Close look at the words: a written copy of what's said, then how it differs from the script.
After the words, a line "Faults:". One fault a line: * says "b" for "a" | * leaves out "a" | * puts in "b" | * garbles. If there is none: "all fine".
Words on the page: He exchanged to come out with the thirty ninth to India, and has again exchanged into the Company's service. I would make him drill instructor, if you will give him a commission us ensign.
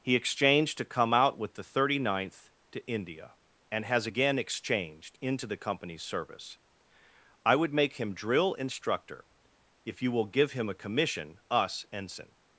He exchanged to come out with the thirty ninth to India, and has again exchanged into the Company's service. I would make him drill instructor, if you will give him a commission us ensign.
Faults:
all fine